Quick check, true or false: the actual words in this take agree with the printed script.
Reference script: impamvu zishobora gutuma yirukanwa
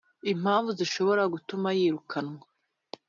true